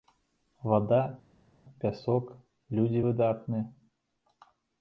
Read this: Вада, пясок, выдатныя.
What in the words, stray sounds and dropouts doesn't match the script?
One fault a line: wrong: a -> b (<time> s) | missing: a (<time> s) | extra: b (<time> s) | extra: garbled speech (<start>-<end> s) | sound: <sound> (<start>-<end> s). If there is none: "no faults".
extra: людзі (2.8 s)